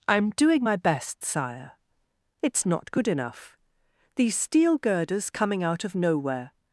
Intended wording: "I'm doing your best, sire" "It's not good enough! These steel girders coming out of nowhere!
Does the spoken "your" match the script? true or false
false